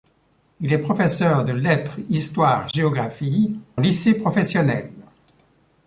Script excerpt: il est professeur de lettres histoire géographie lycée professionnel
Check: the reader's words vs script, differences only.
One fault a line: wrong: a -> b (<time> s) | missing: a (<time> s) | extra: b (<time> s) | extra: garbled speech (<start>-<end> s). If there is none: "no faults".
no faults